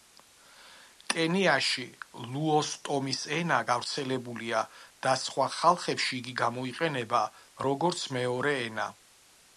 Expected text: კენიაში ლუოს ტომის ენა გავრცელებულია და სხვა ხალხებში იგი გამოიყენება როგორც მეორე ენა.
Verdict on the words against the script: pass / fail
pass